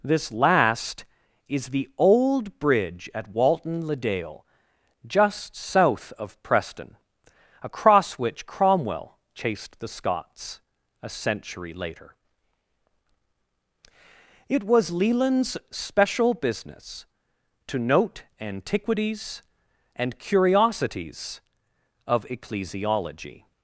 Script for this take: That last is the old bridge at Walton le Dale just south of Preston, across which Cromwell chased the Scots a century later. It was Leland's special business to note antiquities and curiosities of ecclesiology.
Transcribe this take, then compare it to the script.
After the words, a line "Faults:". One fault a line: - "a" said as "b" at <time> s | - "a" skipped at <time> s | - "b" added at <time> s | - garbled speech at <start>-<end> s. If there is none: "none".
This last is the old bridge at Walton le Dale just south of Preston, across which Cromwell chased the Scots a century later. It was Leland's special business to note antiquities and curiosities of ecclesiology.
Faults:
- "That" said as "This" at 0.0 s